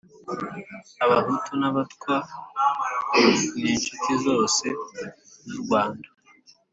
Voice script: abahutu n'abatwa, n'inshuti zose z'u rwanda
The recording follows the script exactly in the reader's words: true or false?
true